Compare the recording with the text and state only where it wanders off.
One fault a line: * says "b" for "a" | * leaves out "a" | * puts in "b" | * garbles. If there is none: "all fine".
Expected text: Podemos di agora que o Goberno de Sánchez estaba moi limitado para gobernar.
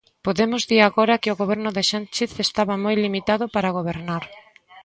all fine